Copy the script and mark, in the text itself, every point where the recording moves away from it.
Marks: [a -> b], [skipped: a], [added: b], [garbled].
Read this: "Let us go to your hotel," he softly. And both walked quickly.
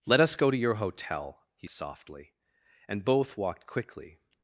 "Let us go to your hotel," he softly. And both walked quickly.